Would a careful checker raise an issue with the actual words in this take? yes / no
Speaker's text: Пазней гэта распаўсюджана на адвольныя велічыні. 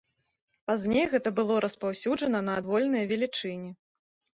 yes